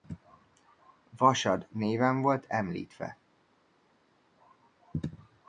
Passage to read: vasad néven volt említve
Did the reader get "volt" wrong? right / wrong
right